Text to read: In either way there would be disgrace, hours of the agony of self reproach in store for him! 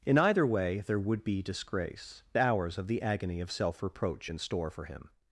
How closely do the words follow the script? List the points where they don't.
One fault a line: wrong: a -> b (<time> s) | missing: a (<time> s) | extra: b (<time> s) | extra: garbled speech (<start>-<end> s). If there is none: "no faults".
no faults